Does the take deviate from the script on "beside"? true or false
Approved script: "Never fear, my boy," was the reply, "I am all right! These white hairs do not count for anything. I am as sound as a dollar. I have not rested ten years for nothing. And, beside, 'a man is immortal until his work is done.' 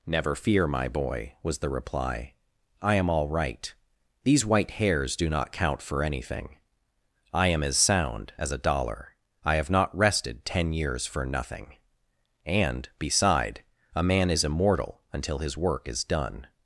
false